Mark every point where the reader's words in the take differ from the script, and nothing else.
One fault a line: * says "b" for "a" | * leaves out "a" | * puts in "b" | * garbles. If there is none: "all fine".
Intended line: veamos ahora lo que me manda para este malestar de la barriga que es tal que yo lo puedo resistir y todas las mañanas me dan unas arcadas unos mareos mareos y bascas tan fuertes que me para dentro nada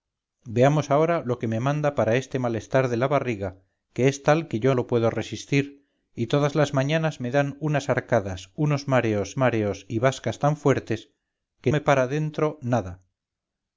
all fine